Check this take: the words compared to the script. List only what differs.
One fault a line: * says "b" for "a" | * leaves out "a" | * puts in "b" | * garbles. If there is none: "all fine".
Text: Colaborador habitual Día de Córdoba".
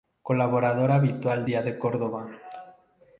all fine